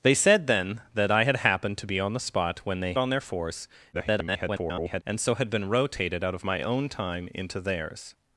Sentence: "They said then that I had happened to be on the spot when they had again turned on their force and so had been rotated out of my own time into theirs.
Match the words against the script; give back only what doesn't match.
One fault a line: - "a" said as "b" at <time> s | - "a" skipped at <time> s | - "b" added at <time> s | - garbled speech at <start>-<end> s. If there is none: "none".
- "had again turned" skipped at 2.9 s
- garbled speech at 3.9-5.0 s